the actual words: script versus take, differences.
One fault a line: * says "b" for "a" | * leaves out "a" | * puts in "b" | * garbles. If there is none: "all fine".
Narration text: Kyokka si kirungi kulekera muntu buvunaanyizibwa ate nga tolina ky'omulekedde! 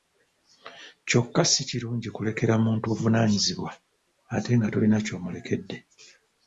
all fine